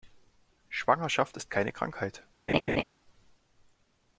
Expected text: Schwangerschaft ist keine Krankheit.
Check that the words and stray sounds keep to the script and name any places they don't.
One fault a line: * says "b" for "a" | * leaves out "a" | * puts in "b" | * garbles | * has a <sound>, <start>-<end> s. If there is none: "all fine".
* has a laugh, 2.5-2.8 s